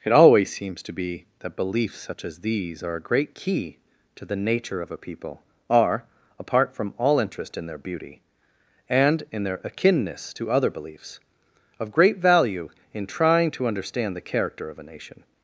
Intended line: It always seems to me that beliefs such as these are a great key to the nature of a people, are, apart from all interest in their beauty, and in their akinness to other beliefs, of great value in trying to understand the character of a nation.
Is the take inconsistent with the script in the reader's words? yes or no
yes